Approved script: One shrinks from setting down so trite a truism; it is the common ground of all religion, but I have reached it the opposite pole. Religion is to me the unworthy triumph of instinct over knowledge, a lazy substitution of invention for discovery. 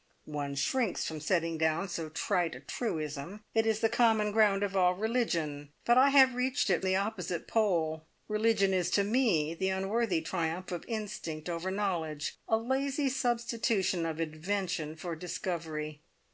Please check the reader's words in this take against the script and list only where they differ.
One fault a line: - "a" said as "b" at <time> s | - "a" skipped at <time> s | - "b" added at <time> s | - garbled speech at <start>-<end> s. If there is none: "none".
none